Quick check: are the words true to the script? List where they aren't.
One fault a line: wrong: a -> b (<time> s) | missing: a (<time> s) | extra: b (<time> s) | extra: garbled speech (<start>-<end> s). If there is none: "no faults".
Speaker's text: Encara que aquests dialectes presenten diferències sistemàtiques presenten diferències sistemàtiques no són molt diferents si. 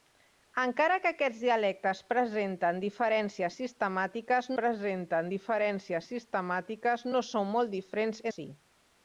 no faults